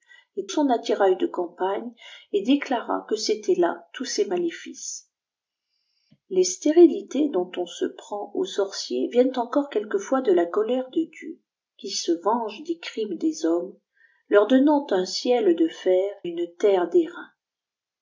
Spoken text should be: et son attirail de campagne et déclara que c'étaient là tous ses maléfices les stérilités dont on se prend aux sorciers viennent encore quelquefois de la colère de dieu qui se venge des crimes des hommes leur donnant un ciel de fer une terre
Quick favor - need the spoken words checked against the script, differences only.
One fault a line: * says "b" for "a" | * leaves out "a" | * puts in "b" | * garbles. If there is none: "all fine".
all fine